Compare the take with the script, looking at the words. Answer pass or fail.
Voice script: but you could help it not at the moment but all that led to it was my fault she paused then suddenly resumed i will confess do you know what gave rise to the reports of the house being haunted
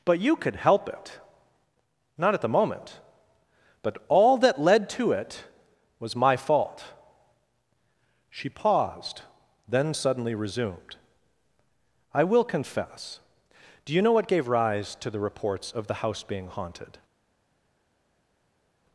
pass